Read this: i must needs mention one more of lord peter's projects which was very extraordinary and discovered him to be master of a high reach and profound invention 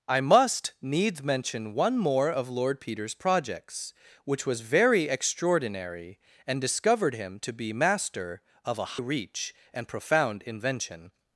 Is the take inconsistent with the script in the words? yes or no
yes